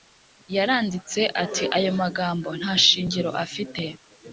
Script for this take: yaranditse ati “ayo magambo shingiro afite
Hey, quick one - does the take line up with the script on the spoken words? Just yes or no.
no